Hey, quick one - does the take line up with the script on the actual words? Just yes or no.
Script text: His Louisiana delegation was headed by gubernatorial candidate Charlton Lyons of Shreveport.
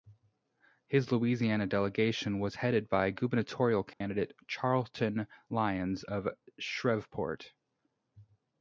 yes